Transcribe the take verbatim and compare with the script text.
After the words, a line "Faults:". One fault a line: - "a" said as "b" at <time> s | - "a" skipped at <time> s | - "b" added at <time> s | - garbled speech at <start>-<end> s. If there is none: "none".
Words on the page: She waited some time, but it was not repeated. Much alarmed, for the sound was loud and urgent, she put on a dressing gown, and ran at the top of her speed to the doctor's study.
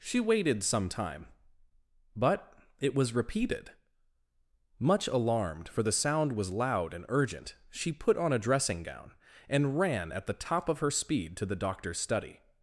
She waited some time, but it was repeated. Much alarmed, for the sound was loud and urgent, she put on a dressing gown, and ran at the top of her speed to the doctor's study.
Faults:
- "not" skipped at 3.1 s